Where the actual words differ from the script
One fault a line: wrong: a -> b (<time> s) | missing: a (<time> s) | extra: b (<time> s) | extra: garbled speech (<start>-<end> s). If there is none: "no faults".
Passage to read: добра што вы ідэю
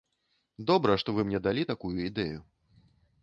extra: мне далі такую (1.3 s)